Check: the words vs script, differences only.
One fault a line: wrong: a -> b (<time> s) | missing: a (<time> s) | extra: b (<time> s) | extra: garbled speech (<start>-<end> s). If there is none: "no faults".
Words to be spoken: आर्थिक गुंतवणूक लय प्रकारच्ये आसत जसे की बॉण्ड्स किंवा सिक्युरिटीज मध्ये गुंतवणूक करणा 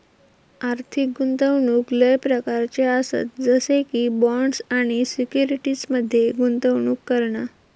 wrong: किंवा -> आणि (4.7 s)